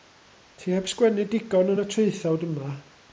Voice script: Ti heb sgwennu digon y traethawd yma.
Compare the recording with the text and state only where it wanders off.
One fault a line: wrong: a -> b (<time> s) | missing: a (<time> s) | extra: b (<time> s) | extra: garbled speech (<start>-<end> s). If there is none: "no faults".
extra: yn (1.7 s)